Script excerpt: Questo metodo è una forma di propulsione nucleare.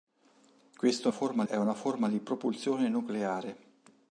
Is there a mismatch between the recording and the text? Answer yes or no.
yes